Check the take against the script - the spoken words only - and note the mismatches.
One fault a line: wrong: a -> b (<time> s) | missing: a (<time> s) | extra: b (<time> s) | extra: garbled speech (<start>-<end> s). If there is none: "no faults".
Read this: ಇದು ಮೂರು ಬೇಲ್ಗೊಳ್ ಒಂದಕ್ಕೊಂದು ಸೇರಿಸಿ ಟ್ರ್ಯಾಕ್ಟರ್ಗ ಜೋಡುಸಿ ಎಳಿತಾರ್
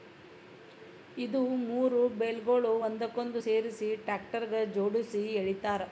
no faults